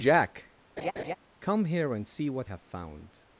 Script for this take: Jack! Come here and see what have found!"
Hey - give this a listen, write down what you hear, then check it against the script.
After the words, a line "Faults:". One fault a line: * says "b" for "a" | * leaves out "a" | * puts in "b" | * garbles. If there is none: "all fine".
Jack! Come here and see what have found!"
Faults:
all fine